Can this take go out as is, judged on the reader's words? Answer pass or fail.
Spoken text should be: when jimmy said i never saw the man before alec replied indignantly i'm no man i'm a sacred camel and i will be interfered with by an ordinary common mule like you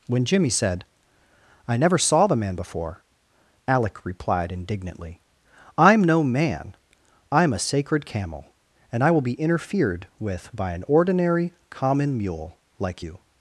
pass